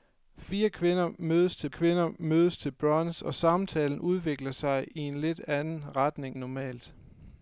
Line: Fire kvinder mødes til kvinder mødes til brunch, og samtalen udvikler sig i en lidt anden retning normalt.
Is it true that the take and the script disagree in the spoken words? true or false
false